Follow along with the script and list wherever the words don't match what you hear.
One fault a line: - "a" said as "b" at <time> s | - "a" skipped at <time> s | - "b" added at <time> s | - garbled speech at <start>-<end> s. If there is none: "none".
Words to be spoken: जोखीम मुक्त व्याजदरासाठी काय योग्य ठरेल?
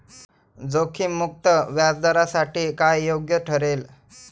none